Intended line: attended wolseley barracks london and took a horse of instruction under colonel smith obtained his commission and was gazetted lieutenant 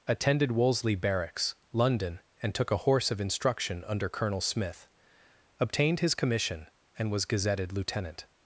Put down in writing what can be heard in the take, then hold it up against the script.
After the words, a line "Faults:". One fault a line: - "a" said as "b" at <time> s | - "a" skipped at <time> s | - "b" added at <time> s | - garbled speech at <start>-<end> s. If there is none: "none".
attended wolseley barracks london and took a horse of instruction under colonel smith obtained his commission and was gazetted lieutenant
Faults:
none